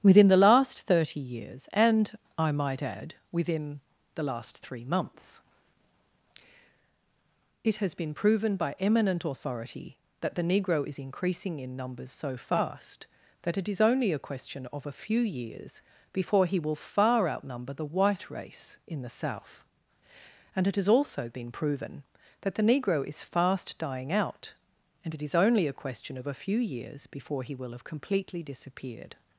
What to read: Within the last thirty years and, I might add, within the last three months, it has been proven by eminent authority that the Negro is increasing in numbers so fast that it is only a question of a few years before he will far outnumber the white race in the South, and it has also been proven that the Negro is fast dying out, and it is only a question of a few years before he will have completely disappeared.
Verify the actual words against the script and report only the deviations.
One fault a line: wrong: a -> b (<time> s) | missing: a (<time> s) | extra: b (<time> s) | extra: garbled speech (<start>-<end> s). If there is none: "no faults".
no faults